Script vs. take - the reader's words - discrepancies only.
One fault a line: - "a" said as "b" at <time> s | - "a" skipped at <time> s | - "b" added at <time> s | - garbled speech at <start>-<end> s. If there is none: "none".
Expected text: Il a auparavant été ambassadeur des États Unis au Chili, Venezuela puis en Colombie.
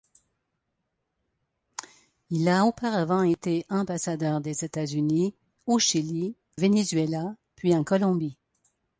none